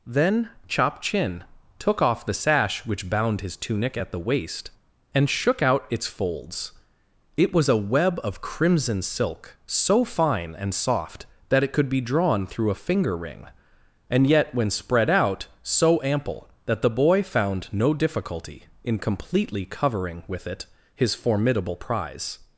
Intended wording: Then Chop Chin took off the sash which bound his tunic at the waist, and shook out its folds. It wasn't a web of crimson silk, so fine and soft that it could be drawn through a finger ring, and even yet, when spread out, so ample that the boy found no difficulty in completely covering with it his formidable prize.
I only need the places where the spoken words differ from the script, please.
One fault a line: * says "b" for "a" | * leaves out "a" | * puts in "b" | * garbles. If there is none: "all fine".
* says "was" for "wasn't"
* leaves out "even"